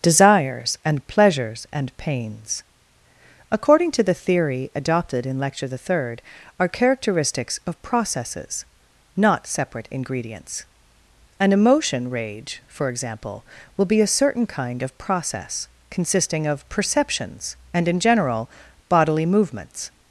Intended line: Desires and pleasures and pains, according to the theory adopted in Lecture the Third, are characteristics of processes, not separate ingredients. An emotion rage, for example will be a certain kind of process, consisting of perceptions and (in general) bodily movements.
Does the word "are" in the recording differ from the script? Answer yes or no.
no